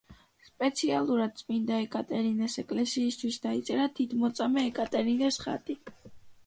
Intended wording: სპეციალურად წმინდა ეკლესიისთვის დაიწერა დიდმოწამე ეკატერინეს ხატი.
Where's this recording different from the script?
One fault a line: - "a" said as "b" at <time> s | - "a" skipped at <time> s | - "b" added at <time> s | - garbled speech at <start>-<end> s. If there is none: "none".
- "ეკატერინეს" added at 1.8 s